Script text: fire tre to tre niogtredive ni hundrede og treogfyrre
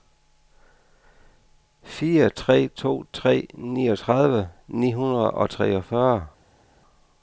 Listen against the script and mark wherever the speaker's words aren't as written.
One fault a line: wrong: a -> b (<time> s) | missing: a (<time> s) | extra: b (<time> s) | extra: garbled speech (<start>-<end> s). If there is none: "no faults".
no faults